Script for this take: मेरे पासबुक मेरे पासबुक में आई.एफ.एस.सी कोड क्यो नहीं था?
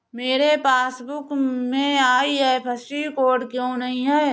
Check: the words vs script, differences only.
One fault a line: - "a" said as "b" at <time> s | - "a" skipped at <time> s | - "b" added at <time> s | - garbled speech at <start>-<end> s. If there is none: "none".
- "मेरे पासबुक" skipped at 1.3 s
- "था" said as "है" at 4.0 s